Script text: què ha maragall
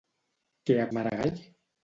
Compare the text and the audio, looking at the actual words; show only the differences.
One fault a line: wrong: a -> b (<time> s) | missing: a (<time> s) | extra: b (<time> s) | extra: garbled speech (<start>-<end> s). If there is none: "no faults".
no faults